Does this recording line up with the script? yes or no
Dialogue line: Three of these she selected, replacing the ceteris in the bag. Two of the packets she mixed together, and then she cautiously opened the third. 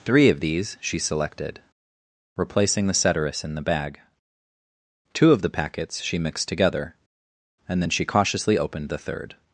yes